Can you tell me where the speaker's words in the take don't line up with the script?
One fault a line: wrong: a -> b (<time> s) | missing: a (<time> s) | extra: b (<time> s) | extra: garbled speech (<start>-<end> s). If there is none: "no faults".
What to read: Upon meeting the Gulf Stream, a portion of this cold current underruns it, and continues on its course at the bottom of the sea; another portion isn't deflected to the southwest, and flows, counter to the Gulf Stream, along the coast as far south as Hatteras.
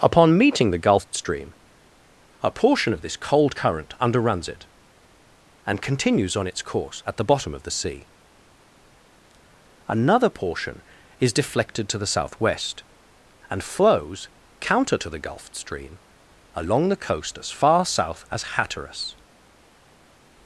wrong: isn't -> is (11.2 s)